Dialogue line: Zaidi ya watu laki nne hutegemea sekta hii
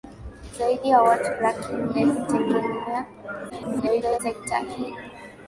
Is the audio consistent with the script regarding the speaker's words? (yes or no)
no